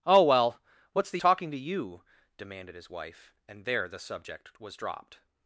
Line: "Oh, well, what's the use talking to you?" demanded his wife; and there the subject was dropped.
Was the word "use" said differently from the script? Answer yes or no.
yes